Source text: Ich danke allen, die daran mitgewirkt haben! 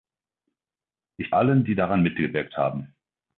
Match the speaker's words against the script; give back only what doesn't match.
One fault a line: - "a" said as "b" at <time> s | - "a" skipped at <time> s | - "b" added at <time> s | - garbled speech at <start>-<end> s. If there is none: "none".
- "danke" skipped at 1.3 s